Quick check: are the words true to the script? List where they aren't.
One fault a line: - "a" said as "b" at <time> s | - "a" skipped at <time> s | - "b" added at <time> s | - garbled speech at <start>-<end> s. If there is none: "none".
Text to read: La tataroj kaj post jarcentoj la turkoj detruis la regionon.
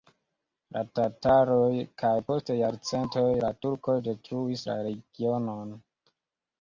none